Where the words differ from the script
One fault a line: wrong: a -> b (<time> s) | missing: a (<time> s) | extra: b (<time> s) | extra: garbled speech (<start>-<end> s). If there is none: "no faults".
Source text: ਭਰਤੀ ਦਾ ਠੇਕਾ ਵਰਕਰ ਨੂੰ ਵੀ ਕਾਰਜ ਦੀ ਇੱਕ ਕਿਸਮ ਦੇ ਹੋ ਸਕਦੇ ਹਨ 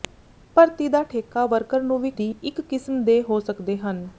missing: ਕਾਰਜ (2.1 s)